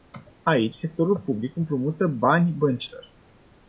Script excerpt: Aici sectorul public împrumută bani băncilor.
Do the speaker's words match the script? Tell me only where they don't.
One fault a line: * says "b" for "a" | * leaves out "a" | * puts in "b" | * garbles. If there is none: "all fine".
all fine